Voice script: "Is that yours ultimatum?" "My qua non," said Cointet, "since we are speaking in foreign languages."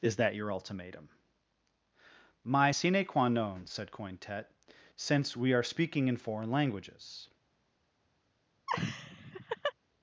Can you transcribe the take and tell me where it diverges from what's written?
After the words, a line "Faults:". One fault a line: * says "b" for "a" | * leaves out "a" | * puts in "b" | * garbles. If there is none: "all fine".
"Is that your ultimatum?" "My sine qua non," said Cointet, "since we are speaking in foreign languages."
Faults:
* says "your" for "yours"
* puts in "sine"